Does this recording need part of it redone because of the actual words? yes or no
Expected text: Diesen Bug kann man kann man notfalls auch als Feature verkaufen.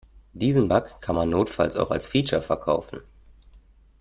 yes